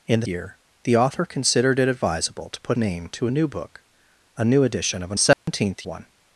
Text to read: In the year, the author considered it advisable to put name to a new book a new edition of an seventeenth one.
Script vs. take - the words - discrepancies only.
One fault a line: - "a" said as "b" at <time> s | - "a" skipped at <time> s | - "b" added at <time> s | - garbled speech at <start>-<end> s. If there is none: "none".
none